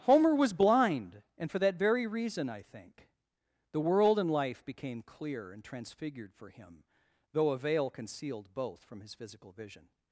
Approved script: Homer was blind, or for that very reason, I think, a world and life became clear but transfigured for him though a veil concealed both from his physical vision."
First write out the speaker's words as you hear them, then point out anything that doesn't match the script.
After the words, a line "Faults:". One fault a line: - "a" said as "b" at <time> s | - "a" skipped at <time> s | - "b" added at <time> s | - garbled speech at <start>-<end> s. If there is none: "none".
Homer was blind, and for that very reason, I think, the world and life became clear and transfigured for him though a veil concealed both from his physical vision."
Faults:
- "or" said as "and" at 1.4 s
- "a" said as "the" at 3.7 s
- "but" said as "and" at 5.5 s